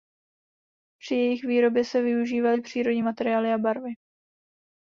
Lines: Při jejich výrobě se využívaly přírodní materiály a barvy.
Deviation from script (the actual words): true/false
false